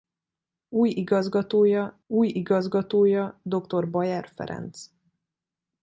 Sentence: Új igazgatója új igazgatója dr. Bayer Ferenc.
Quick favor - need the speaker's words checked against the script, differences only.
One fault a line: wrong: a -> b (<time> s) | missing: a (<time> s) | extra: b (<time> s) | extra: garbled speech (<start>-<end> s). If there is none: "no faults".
no faults